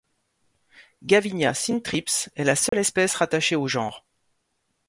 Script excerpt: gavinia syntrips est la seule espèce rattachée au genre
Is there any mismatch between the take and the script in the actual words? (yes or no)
no